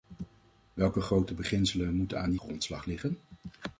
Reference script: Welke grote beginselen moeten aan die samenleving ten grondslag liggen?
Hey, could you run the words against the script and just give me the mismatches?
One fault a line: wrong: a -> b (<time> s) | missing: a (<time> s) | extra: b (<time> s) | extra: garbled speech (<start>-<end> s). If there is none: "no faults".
missing: samenleving ten (2.4 s)